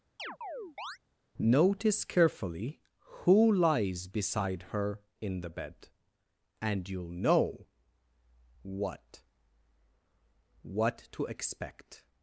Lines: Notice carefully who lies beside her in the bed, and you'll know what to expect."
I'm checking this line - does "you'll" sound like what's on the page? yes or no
yes